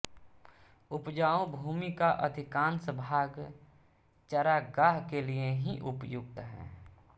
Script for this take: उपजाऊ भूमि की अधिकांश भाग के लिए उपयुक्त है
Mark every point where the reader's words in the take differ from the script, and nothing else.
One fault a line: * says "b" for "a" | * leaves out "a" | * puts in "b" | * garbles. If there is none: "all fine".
* says "का" for "की"
* puts in "चरागाह"
* puts in "ही"